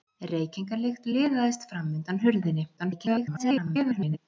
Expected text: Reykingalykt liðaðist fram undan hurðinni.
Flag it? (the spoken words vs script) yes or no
yes